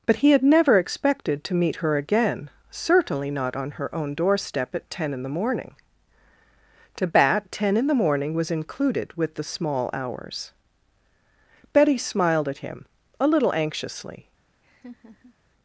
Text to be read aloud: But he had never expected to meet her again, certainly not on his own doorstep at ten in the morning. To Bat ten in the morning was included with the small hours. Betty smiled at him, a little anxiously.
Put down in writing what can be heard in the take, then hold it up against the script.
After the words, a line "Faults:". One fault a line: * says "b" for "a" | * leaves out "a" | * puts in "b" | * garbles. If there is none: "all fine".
But he had never expected to meet her again, certainly not on her own doorstep at ten in the morning. To Bat ten in the morning was included with the small hours. Betty smiled at him, a little anxiously.
Faults:
* says "her" for "his"